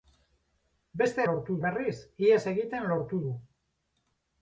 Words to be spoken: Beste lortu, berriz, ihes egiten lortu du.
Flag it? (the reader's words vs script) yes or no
no